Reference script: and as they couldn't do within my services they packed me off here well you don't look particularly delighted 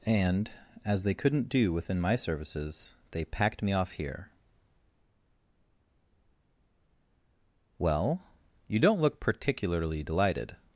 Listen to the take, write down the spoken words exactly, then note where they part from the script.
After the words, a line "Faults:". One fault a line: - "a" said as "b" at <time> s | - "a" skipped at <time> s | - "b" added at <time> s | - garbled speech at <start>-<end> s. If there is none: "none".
and as they couldn't do within my services they packed me off here well you don't look particularly delighted
Faults:
none